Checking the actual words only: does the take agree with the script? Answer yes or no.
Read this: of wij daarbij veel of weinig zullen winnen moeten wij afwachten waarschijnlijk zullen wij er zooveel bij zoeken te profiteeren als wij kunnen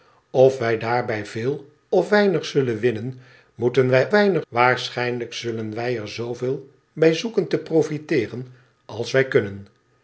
no